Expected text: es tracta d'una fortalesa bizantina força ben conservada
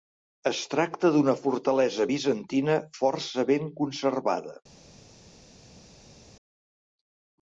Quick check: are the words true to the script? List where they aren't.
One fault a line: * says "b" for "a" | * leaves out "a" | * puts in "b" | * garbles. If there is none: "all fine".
all fine